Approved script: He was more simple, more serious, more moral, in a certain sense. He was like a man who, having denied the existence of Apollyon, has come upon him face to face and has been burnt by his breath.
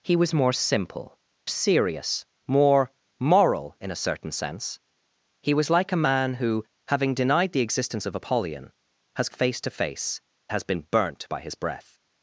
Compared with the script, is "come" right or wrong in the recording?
wrong